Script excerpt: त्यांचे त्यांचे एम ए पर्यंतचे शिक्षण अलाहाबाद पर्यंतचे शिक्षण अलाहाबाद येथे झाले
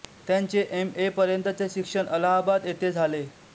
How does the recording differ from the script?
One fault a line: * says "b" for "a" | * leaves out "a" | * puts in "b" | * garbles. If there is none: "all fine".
* leaves out "त्यांचे"
* leaves out "पर्यंतचे शिक्षण अलाहाबाद"